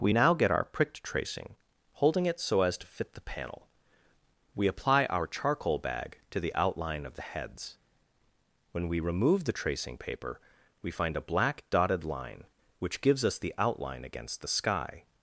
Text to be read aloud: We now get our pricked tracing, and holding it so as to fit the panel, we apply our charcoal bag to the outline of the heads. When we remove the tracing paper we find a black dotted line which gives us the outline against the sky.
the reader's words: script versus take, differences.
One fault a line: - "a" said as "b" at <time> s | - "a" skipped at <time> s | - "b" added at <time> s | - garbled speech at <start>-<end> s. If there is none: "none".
- "and" skipped at 1.6 s